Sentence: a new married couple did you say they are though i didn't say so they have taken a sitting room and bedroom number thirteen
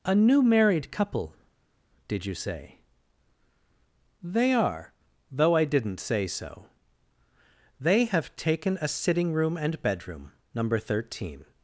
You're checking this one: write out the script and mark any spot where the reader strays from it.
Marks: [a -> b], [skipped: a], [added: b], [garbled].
a new married couple did you say they are though i didn't say so they have taken a sitting room and bedroom number thirteen